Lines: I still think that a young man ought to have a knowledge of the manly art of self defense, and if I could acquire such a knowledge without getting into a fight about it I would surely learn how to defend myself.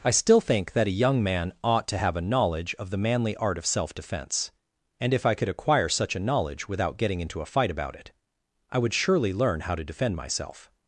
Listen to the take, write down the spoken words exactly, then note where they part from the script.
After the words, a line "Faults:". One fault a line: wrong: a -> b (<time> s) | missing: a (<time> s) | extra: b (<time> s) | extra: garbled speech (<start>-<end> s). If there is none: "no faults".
I still think that a young man ought to have a knowledge of the manly art of self defense, and if I could acquire such a knowledge without getting into a fight about it I would surely learn how to defend myself.
Faults:
no faults